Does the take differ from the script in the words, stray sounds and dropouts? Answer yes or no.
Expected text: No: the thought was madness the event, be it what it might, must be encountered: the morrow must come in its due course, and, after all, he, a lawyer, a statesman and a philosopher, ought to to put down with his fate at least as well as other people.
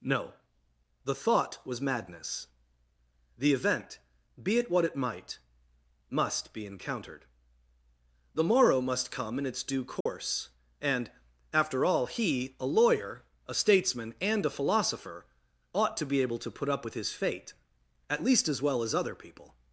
yes